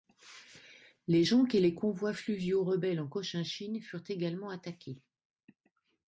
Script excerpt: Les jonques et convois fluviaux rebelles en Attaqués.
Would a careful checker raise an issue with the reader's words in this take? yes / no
yes